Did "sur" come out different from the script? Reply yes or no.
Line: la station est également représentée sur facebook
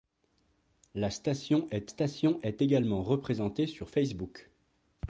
no